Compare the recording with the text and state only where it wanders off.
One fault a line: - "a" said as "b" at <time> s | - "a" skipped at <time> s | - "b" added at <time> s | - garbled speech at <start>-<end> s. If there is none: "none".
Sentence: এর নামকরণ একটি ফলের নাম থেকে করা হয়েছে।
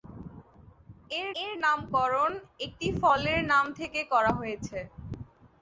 - "এর" added at 1.4 s